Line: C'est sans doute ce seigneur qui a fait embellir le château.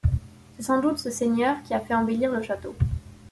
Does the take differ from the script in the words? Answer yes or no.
no